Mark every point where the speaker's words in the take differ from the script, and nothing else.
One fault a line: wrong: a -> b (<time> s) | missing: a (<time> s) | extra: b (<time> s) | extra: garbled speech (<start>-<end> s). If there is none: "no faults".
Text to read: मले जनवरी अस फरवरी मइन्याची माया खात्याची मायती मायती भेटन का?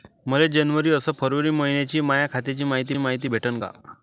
no faults